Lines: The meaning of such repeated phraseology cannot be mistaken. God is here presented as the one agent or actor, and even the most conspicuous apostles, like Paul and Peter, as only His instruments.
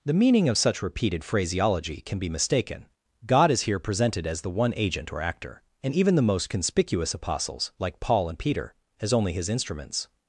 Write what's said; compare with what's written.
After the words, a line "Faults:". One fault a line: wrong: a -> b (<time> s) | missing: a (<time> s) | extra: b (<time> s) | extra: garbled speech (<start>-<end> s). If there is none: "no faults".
The meaning of such repeated phraseology can be mistaken. God is here presented as the one agent or actor, and even the most conspicuous apostles, like Paul and Peter, as only His instruments.
Faults:
wrong: cannot -> can (2.0 s)